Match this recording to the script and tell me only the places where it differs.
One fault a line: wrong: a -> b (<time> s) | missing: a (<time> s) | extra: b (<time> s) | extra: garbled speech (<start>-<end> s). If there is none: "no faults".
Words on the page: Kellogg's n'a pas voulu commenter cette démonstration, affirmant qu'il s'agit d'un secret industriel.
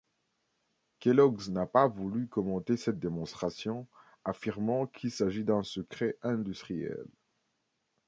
no faults